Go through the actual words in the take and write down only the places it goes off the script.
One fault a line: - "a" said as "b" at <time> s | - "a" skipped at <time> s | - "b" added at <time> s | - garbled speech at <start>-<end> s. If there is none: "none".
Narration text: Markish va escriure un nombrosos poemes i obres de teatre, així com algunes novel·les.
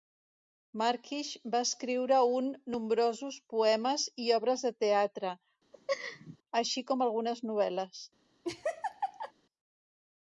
none